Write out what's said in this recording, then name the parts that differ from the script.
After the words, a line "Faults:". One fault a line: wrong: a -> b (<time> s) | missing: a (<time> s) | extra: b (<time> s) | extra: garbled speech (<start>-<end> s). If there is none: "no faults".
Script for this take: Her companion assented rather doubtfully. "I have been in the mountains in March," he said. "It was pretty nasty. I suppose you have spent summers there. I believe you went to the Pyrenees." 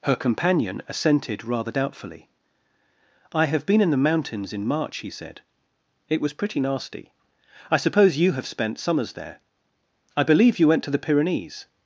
Her companion assented rather doubtfully. "I have been in the mountains in March," he said. "It was pretty nasty. I suppose you have spent summers there. I believe you went to the Pyrenees."
Faults:
no faults